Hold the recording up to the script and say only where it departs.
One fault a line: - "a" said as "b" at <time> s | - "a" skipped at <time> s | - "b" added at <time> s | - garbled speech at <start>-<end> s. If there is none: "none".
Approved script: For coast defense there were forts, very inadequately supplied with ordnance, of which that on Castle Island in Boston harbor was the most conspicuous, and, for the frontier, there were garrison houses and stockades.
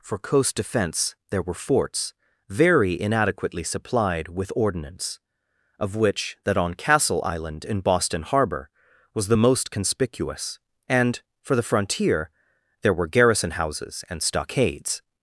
none